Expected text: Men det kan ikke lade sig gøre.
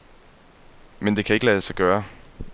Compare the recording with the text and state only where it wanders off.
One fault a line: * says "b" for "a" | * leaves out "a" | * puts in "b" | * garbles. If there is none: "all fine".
all fine